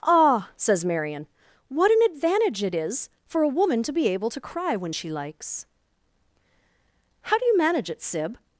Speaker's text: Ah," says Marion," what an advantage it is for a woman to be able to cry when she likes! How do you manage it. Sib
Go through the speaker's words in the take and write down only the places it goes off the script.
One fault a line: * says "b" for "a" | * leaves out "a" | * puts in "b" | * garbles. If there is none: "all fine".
all fine